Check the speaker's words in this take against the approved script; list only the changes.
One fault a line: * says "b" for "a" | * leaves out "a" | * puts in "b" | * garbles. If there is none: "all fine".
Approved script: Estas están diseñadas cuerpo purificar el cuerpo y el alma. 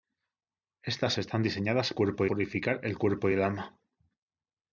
all fine